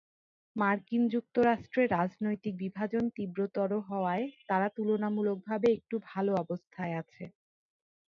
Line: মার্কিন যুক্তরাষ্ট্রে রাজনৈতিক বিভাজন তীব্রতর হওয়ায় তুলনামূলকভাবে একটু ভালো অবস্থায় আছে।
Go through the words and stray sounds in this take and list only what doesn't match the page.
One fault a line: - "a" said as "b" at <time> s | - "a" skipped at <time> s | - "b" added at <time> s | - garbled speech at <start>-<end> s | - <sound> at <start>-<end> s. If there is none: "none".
- "তারা" added at 4.5 s